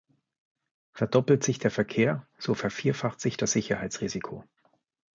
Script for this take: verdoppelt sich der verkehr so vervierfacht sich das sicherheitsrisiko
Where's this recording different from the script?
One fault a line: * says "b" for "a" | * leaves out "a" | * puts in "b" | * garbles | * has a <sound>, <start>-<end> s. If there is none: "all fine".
all fine